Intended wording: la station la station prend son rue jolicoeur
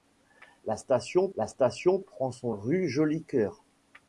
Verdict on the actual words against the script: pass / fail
pass